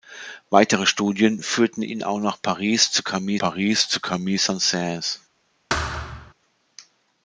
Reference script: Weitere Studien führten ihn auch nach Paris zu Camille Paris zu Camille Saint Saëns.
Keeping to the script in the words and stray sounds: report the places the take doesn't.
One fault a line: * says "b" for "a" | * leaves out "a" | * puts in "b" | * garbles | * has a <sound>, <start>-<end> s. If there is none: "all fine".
* has a thud, 5.7-6.3 s